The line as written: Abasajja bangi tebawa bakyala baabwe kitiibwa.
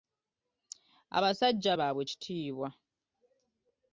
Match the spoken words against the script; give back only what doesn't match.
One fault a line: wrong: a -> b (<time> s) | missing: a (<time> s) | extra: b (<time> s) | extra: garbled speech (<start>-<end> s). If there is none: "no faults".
missing: bangi tebawa bakyala (1.7 s)